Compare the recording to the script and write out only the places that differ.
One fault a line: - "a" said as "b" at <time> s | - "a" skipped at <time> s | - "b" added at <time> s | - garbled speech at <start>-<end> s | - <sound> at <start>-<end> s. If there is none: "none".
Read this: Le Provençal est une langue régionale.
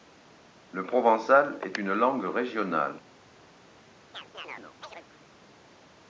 - chirp at 4.1-5.1 s